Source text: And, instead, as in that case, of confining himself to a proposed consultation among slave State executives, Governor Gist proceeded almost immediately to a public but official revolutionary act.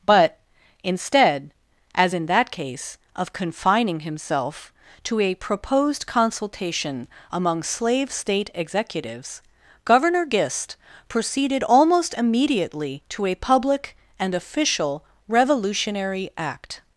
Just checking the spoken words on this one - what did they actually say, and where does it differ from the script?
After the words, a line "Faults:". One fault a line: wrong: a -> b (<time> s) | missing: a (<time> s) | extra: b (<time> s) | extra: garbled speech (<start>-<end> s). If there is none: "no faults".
But, instead, as in that case, of confining himself to a proposed consultation among slave State executives, Governor Gist proceeded almost immediately to a public and official revolutionary act.
Faults:
wrong: And -> But (0.1 s)
wrong: but -> and (14.2 s)